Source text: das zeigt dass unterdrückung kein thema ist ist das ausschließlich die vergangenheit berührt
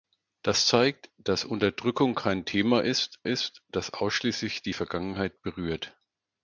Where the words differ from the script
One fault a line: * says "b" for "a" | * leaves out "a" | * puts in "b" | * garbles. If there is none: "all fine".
all fine